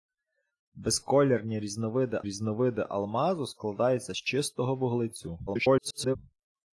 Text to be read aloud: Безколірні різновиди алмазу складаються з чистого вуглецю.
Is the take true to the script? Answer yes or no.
no